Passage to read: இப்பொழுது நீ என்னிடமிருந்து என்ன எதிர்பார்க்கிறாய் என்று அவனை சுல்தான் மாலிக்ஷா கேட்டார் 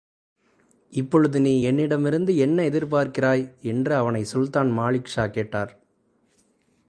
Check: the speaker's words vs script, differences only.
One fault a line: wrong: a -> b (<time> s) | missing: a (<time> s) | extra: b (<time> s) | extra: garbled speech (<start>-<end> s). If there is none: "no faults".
no faults